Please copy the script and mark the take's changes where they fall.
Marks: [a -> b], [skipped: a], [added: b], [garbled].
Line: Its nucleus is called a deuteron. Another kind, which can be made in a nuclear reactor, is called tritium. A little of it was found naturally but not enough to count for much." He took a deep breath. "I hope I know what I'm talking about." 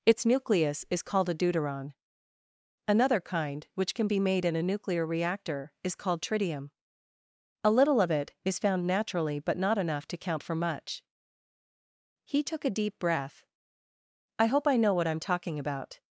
Its nucleus is called a deuteron. Another kind, which can be made in a nuclear reactor, is called tritium. A little of it [was -> is] found naturally but not enough to count for much." He took a deep breath. "I hope I know what I'm talking about."